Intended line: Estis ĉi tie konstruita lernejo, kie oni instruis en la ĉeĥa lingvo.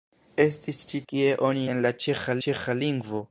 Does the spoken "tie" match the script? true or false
false